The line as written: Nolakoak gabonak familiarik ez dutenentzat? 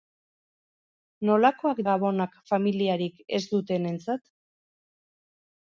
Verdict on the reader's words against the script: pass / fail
pass